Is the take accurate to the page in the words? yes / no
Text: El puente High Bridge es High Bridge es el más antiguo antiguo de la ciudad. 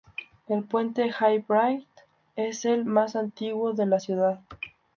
no